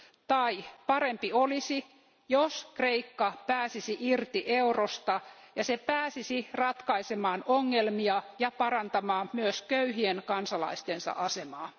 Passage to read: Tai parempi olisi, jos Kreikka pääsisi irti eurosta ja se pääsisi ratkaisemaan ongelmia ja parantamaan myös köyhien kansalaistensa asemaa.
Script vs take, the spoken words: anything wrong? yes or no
no